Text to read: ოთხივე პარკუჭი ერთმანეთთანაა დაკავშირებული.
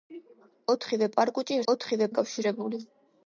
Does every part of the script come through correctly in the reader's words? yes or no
no